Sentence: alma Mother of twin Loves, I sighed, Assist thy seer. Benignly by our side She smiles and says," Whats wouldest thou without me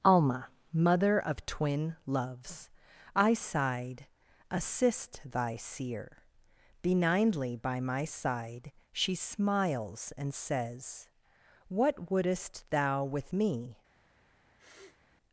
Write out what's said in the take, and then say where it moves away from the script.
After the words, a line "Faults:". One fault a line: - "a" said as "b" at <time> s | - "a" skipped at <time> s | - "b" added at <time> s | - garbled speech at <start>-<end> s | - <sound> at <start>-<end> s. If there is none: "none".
alma Mother of twin Loves, I sighed, Assist thy seer. Benignly by my side She smiles and says," What wouldest thou with me
Faults:
- "our" said as "my" at 7.8 s
- "Whats" said as "What" at 11.7 s
- "without" said as "with" at 13.0 s
- sniff at 14.6-15.0 s